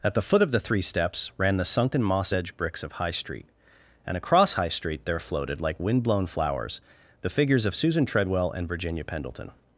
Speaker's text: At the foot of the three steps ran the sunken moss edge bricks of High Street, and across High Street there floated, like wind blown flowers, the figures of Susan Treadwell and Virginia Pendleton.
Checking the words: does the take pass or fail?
pass